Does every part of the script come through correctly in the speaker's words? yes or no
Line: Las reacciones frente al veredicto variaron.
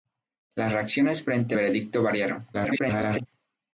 no